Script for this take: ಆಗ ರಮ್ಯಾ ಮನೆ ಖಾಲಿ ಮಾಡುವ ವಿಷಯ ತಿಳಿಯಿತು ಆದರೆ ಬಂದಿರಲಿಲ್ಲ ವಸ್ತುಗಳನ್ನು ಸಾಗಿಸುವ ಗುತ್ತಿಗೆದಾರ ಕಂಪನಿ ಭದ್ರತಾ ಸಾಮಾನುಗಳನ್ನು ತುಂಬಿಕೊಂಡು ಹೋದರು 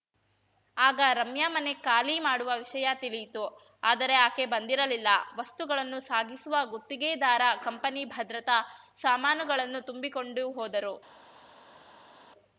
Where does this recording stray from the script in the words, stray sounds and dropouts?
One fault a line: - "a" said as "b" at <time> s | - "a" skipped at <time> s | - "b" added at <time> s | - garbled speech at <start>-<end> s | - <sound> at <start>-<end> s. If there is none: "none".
- "ಆಕೆ" added at 4.2 s